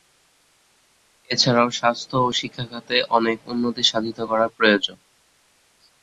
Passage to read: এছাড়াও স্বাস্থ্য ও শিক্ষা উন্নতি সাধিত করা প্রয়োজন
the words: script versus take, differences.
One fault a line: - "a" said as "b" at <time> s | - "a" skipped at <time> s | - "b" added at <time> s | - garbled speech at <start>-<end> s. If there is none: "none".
- "খাতে অনেক" added at 2.7 s